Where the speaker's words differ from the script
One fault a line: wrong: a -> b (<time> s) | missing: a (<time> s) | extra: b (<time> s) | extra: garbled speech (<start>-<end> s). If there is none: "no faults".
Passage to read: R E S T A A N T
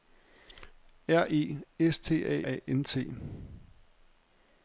no faults